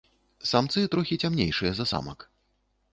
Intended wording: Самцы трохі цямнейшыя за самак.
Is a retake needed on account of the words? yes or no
no